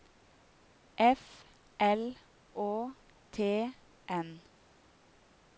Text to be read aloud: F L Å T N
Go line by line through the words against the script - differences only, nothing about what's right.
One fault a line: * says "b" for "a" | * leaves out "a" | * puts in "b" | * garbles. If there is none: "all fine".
all fine